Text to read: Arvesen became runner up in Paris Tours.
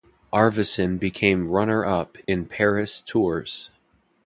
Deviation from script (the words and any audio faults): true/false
true